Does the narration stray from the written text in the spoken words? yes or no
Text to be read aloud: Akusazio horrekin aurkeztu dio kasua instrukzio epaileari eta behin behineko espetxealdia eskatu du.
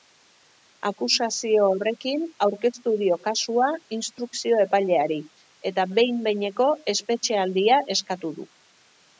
no